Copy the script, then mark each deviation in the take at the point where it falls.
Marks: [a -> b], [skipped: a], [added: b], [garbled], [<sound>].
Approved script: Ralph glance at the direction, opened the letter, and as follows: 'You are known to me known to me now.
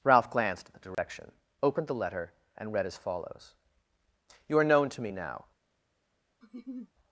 Ralph [glance -> glanced] at the direction, [dropout] opened the letter, and [added: read] as follows: 'You are known to me [skipped: known to me] now. [laugh]